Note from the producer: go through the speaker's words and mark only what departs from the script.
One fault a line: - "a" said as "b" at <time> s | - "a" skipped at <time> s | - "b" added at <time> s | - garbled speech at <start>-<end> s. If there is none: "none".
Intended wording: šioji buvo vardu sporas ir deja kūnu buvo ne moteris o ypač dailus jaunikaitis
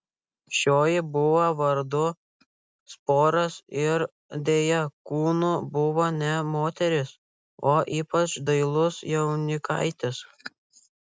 none